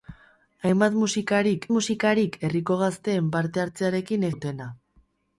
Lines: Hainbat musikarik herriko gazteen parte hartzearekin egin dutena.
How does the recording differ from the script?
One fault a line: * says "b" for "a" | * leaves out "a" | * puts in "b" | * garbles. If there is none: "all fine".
* puts in "musikarik"
* leaves out "egin"